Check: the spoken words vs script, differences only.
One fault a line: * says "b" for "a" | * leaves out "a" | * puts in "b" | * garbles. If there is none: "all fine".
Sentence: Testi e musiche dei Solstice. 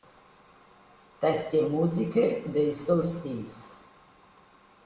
all fine